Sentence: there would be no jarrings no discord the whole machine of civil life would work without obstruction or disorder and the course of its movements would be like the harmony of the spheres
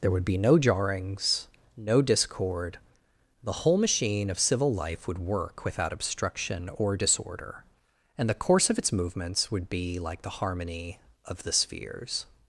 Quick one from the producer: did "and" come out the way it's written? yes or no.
yes